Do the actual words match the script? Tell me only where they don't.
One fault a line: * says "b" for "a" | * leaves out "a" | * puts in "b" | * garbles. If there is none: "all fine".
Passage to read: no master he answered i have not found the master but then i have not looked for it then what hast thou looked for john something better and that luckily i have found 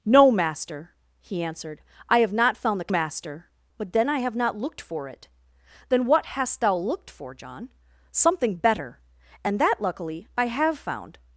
all fine